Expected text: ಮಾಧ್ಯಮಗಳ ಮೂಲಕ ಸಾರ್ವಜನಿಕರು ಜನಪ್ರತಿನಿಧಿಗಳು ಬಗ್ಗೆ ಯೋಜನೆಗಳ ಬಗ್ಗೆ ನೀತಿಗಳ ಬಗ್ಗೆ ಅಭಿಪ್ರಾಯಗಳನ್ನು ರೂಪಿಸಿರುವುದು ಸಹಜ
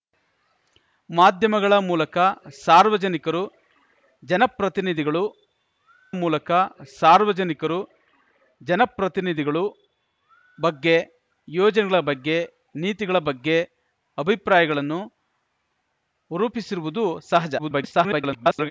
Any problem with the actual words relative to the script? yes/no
yes